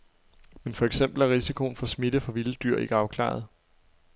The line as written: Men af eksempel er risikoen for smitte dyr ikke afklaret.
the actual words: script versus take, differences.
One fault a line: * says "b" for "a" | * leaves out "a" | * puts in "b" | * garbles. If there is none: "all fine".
* says "for" for "af"
* puts in "fra vilde"